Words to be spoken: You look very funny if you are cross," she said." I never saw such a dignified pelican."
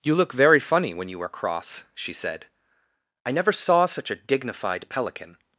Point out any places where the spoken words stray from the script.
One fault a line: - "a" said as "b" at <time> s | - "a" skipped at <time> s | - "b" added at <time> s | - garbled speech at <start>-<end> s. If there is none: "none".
- "if" said as "when" at 0.9 s